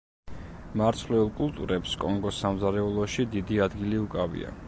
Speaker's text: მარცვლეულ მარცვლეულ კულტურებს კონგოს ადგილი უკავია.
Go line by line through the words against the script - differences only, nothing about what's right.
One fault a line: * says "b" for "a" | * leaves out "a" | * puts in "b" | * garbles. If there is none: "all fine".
* leaves out "მარცვლეულ"
* puts in "სამზარეულოში დიდი"